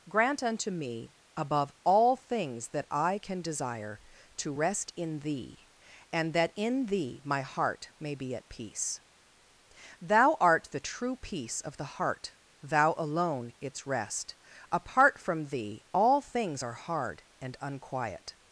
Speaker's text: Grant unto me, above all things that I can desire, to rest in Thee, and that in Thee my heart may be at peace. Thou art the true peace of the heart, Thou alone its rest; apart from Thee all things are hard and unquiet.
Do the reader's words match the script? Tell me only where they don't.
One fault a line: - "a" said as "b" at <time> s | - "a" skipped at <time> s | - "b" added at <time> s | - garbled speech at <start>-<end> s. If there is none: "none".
none